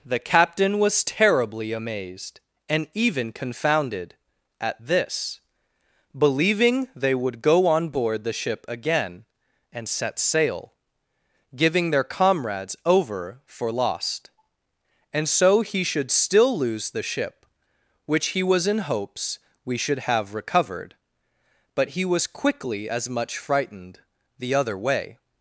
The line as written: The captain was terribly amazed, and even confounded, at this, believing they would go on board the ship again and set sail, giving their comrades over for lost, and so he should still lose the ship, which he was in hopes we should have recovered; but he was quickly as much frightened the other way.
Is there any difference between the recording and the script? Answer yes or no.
no